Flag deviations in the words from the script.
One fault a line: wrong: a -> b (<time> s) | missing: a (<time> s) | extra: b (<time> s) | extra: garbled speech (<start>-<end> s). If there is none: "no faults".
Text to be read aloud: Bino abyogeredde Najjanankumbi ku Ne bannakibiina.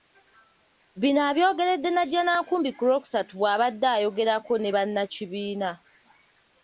extra: Lwokusatu bw'abadde ayogerako (2.9 s)